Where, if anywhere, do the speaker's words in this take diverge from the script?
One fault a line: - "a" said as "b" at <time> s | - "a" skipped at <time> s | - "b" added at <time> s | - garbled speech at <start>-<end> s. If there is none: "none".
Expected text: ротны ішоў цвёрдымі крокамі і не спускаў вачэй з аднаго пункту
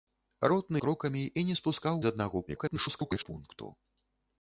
- "ішоў цвёрдымі" skipped at 0.8 s
- "вачэй" skipped at 2.0 s
- garbled speech at 2.5-3.3 s